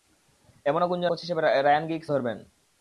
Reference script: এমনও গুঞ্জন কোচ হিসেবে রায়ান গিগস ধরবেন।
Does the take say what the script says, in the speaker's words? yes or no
yes